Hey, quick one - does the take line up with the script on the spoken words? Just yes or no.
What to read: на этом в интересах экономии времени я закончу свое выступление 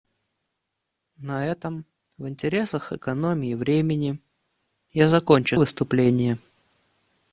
no